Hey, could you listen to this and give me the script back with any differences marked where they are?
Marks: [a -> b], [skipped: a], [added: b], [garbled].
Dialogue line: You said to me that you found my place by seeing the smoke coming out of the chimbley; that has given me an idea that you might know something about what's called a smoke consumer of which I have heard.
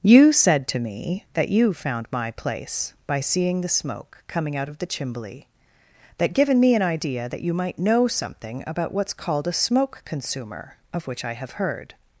You said to me that you found my place by seeing the smoke coming out of the chimbley; that [skipped: has] given me an idea that you might know something about what's called a smoke consumer of which I have heard.